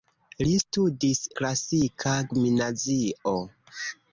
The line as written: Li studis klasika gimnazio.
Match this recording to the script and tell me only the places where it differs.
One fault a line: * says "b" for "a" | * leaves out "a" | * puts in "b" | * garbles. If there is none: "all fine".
all fine